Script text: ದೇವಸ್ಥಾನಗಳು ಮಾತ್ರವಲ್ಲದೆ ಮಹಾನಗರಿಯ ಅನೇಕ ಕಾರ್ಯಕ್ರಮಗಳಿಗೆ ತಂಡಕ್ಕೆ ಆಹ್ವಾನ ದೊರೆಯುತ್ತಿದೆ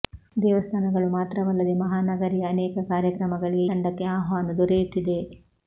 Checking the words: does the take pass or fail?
pass